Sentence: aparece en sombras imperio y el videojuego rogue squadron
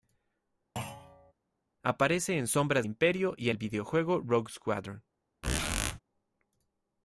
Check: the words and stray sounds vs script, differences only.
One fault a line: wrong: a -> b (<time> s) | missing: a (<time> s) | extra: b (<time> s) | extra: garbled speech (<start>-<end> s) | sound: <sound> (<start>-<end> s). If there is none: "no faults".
sound: thud (0.8-1.3 s)
sound: squeak (5.4-6.0 s)